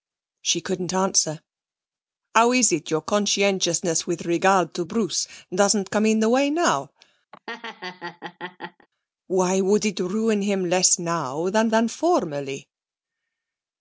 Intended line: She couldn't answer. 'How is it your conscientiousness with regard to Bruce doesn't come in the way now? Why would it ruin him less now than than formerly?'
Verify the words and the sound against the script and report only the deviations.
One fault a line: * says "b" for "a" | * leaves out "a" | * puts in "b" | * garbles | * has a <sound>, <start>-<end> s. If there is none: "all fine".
* has a laugh, 7.3-8.9 s